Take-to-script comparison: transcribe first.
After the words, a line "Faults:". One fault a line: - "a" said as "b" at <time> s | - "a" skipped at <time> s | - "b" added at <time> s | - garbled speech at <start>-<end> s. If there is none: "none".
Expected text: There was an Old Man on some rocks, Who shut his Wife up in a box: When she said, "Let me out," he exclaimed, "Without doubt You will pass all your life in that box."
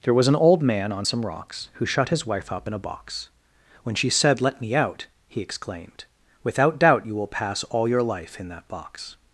There was an Old Man on some rocks, Who shut his Wife up in a box: When she said, "Let me out," he exclaimed, "Without doubt You will pass all your life in that box."
Faults:
none